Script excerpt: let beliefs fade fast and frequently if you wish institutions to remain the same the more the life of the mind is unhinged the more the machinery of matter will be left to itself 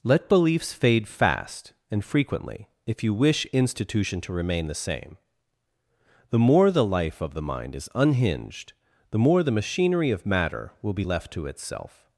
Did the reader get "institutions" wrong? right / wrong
wrong